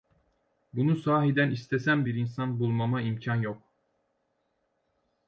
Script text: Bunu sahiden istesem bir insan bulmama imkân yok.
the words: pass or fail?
pass